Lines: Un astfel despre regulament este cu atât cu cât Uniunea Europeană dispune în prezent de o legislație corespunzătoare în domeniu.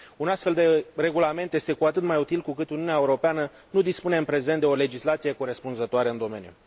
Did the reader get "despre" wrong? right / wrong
wrong